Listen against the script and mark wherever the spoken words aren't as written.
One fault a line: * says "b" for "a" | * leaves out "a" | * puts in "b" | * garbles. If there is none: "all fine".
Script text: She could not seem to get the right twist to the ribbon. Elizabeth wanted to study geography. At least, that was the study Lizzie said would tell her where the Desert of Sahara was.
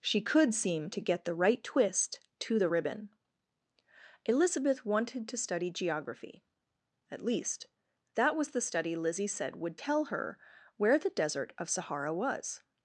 * leaves out "not"